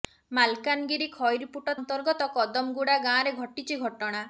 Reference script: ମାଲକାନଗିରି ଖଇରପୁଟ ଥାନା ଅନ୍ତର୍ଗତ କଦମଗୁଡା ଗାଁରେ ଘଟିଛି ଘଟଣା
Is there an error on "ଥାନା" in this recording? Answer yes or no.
yes